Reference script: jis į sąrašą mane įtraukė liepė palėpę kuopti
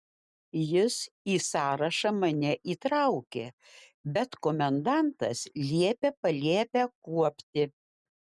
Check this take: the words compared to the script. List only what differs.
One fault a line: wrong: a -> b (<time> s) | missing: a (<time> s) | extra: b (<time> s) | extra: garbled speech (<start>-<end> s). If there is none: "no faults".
extra: bet komendantas (4.2 s)